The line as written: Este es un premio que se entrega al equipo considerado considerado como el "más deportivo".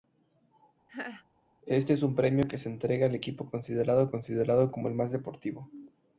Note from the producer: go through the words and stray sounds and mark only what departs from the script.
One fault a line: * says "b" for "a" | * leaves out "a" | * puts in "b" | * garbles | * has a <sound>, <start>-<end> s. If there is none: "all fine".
* has a laugh, 0.9-1.2 s